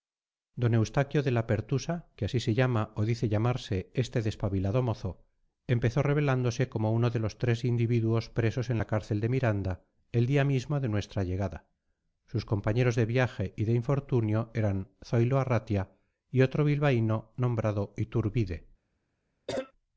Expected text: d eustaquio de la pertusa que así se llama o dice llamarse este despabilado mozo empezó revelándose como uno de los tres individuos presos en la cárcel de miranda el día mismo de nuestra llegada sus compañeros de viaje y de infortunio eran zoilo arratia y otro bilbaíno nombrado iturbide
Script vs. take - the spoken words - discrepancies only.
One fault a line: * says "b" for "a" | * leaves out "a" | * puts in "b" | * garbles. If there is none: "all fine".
all fine